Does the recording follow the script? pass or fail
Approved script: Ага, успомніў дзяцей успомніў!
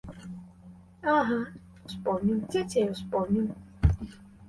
pass